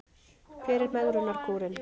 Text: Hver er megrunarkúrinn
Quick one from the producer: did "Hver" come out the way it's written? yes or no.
yes